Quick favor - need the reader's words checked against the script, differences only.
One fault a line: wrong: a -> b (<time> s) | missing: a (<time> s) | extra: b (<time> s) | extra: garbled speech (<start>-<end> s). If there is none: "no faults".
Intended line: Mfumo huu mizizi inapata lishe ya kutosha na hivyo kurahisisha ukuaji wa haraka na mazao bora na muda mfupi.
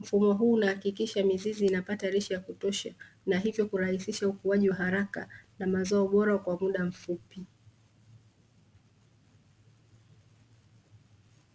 extra: unahakikisha (0.5 s)
wrong: na -> kwa (6.4 s)